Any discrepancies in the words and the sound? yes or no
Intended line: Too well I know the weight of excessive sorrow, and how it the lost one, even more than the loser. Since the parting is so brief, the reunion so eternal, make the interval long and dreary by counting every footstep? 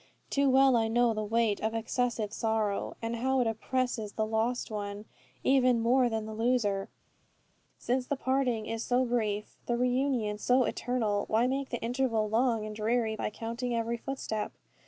yes